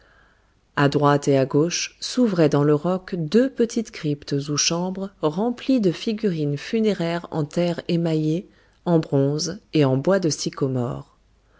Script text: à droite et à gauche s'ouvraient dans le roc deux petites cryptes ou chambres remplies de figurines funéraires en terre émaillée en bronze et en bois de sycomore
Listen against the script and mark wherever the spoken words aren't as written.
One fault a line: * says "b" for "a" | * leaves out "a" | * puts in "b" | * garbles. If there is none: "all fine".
all fine